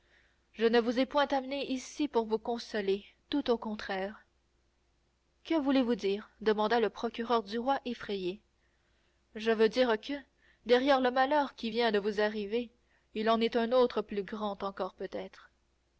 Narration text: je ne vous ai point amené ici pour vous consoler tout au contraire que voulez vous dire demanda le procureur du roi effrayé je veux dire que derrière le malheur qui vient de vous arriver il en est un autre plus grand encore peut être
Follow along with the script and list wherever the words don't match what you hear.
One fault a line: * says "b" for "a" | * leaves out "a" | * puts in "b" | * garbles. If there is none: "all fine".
all fine